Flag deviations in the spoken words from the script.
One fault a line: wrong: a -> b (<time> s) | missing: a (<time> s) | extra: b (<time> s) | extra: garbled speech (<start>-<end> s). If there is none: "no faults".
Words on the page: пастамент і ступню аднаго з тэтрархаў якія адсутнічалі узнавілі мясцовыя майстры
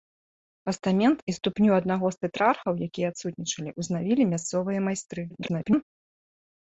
extra: garbled speech (5.3-5.8 s)